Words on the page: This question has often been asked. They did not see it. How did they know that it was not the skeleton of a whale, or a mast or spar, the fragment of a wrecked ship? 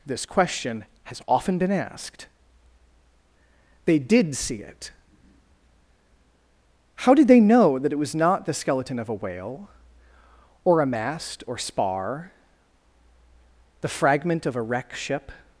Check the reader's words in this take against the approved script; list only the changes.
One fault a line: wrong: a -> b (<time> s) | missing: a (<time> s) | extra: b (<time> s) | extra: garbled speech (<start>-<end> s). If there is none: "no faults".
missing: not (4.3 s)
wrong: wrecked -> wreck (14.6 s)